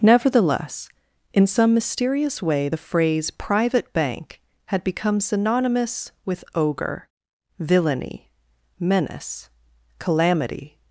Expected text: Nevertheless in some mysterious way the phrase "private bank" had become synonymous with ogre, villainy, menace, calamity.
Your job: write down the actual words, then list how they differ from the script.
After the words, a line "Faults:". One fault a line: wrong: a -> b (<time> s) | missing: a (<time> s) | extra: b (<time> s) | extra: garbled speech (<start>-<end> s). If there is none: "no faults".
Nevertheless in some mysterious way the phrase "private bank" had become synonymous with ogre, villainy, menace, calamity.
Faults:
no faults